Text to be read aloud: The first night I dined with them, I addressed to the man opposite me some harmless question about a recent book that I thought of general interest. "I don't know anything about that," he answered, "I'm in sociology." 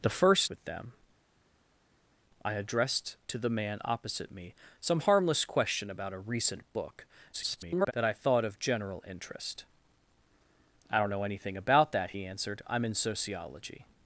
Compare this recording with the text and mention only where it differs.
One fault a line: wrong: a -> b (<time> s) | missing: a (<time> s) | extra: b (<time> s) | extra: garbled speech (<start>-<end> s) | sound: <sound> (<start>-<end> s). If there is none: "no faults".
missing: night I dined (0.5 s)
extra: garbled speech (7.3-7.9 s)